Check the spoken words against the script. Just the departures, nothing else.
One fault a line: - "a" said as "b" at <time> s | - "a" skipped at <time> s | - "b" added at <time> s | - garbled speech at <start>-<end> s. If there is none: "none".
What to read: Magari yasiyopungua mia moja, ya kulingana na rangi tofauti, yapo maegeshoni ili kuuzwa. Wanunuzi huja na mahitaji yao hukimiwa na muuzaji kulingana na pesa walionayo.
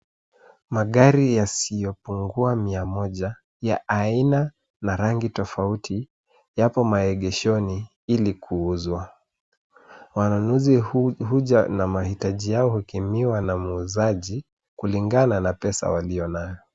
- "kulingana" said as "aina" at 3.9 s